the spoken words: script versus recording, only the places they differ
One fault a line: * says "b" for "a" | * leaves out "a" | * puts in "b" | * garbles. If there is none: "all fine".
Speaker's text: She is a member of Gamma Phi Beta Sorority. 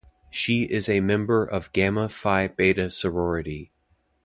all fine